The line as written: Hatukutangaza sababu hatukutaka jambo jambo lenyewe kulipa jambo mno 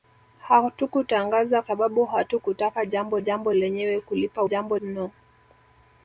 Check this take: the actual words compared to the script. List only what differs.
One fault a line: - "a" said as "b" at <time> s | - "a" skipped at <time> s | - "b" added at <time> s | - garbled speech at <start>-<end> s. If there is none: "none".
none